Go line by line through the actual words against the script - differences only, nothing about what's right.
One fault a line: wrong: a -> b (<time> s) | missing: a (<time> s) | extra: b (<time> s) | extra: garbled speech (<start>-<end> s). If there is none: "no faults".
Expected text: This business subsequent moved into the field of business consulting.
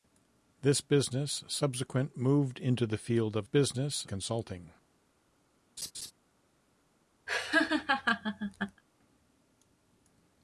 no faults